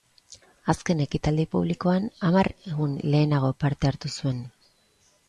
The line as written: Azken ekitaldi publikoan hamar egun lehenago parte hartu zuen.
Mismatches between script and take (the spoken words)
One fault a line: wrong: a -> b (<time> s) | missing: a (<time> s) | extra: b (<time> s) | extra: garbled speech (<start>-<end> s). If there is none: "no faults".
no faults